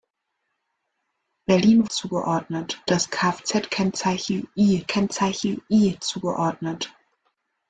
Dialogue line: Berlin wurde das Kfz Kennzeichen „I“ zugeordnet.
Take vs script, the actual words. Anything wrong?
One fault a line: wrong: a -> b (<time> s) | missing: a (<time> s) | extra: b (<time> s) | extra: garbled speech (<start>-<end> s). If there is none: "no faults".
wrong: wurde -> zugeordnet (1.9 s)
extra: Kennzeichen I (4.9 s)